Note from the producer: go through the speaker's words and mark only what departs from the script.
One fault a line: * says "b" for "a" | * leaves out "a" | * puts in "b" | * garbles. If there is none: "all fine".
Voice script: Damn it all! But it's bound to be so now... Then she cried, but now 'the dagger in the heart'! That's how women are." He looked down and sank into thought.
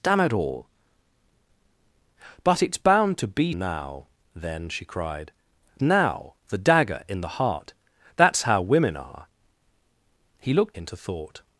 * leaves out "so"
* leaves out "but"
* leaves out "down and sank"